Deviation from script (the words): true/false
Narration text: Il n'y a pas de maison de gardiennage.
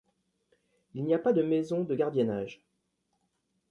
false